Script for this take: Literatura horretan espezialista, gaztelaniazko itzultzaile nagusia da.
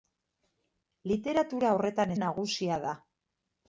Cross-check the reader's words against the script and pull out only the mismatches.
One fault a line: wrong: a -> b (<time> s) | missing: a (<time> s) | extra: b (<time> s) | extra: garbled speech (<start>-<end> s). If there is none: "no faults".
missing: espezialista gaztelaniazko itzultzaile (2.1 s)